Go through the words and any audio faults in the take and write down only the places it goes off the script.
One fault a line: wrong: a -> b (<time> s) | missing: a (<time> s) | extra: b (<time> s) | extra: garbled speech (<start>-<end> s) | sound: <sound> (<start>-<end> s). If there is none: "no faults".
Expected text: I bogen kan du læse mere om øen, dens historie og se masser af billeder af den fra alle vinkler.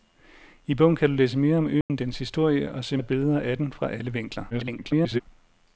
sound: dropout (1.8-1.9 s)
missing: masser (3.0 s)
extra: garbled speech (4.5-5.2 s)